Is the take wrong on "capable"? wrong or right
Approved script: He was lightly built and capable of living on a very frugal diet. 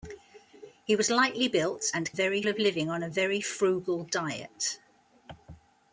wrong